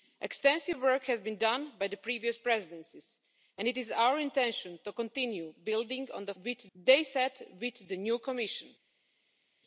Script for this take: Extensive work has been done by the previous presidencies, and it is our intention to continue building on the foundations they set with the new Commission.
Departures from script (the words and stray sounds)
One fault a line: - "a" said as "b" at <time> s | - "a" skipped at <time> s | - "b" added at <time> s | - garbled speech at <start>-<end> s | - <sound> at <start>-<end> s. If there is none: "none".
- "foundations" said as "with" at 6.4 s